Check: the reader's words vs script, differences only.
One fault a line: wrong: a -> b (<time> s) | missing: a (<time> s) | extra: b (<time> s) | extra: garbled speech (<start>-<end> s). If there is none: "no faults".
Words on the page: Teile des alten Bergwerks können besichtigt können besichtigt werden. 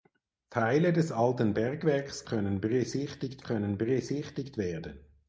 no faults